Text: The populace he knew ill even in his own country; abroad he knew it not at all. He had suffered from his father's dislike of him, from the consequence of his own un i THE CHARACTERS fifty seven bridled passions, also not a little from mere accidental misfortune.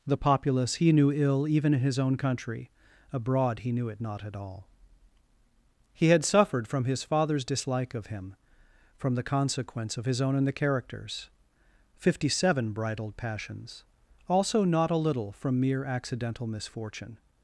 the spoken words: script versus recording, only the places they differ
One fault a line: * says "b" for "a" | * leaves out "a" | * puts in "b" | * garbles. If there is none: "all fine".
* says "and" for "un i"